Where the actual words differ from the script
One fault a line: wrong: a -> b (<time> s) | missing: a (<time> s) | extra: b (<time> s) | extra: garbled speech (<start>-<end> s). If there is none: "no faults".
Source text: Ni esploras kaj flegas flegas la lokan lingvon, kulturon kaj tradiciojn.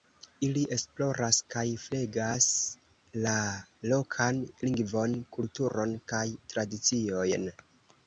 wrong: Ni -> Ili (0.5 s)
missing: flegas (2.5 s)